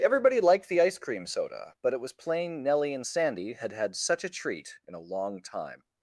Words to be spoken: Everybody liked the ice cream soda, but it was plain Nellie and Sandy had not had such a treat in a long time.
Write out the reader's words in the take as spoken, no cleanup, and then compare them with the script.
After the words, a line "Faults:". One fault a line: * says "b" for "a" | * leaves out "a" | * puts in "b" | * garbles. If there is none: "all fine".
Everybody liked the ice cream soda, but it was plain Nellie and Sandy had had such a treat in a long time.
Faults:
* leaves out "not"